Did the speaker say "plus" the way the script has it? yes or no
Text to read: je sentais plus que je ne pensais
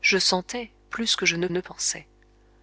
yes